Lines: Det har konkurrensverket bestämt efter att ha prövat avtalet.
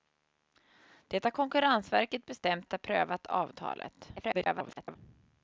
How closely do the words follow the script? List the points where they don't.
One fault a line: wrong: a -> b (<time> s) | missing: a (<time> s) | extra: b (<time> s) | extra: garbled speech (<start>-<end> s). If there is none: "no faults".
missing: efter (2.7 s)
extra: garbled speech (4.2-5.0 s)